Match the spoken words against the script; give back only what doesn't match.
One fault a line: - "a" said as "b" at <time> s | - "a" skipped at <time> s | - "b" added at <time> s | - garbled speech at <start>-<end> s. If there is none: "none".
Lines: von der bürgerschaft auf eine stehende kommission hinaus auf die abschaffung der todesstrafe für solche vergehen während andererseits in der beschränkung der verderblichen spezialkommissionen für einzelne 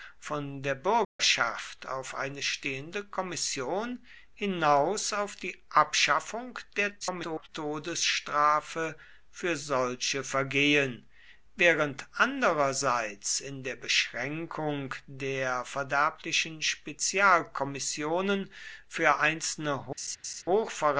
- garbled speech at 7.0-7.5 s